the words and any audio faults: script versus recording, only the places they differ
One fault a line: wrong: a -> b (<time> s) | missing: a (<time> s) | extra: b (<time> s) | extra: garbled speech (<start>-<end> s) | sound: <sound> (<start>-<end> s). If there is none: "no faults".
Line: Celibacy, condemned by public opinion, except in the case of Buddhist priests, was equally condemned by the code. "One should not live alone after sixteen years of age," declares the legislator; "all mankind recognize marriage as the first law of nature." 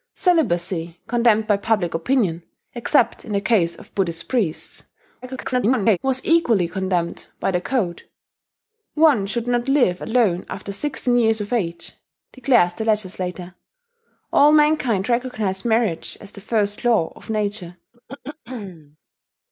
extra: garbled speech (5.2-6.0 s)
sound: throat clearing (17.9-19.0 s)